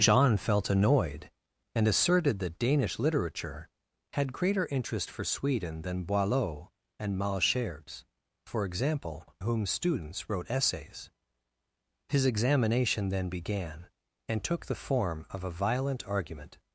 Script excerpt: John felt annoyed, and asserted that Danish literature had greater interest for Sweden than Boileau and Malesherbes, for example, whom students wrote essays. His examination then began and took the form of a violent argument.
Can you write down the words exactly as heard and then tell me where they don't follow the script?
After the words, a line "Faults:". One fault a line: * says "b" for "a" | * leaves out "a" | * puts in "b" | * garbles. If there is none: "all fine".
John felt annoyed, and asserted that Danish literature had greater interest for Sweden than Boileau and Malesherbes, for example, whom students wrote essays. His examination then began and took the form of a violent argument.
Faults:
all fine